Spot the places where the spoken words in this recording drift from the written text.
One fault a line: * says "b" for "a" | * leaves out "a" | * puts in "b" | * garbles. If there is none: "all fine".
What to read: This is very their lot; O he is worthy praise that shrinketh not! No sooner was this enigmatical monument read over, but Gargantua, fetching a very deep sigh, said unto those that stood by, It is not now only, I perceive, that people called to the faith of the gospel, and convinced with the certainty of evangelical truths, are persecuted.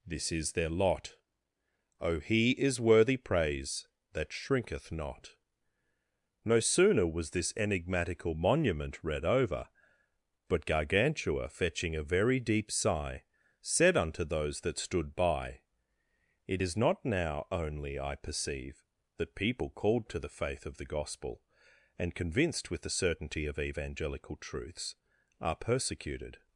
* leaves out "very"